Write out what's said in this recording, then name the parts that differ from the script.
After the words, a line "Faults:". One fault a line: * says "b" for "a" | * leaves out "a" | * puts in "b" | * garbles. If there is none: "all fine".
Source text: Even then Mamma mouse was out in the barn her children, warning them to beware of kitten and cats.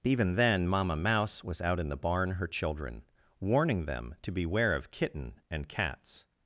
Even then Mamma mouse was out in the barn her children, warning them to beware of kitten and cats.
Faults:
all fine